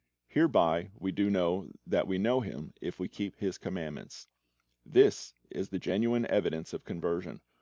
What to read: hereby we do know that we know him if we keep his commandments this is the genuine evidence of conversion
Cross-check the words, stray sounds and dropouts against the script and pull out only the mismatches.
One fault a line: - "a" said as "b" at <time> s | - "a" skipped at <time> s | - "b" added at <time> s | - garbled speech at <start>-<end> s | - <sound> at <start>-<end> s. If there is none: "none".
none